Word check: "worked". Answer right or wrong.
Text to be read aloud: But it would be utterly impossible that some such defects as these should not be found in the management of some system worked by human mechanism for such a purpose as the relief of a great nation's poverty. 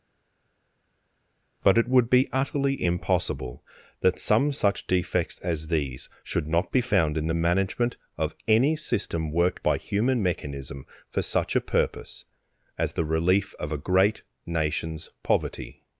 right